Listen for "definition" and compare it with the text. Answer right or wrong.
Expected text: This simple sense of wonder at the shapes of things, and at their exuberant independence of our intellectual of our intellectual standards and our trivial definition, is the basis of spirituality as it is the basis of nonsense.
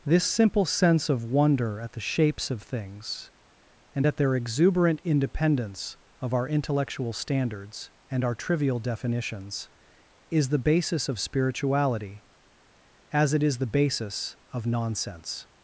wrong